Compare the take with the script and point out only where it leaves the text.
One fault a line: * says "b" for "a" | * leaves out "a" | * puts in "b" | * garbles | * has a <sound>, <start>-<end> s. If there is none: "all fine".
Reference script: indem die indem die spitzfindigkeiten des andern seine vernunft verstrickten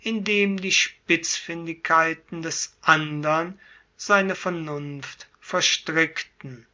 * leaves out "indem die"